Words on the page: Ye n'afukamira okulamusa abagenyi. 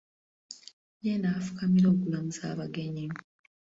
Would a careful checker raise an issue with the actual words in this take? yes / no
no